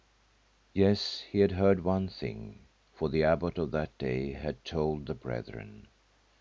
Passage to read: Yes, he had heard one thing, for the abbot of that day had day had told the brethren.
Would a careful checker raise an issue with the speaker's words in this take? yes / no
yes